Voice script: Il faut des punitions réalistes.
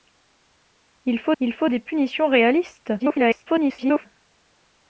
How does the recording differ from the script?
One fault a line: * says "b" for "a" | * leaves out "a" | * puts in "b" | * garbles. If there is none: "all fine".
* puts in "il faut"
* garbles